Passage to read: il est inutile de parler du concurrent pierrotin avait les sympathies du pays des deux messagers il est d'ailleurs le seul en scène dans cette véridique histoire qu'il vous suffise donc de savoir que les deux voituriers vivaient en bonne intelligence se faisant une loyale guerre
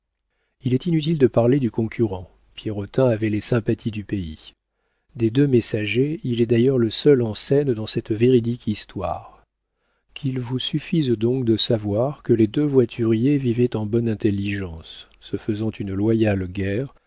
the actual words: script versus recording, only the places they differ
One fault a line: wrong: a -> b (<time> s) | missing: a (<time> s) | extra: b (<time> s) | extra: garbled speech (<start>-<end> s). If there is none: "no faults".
no faults